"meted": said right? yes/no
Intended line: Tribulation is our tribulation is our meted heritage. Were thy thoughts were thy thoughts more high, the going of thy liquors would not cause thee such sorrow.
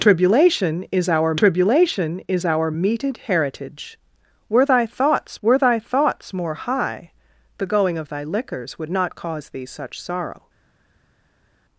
yes